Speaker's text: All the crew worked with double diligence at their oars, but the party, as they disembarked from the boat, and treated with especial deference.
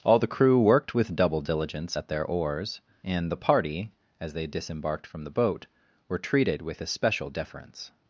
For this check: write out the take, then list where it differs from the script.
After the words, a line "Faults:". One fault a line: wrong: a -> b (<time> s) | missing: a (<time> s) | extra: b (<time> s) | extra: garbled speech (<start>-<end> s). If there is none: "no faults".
All the crew worked with double diligence at their oars, and the party, as they disembarked from the boat, were treated with especial deference.
Faults:
wrong: but -> and (3.0 s)
wrong: and -> were (6.1 s)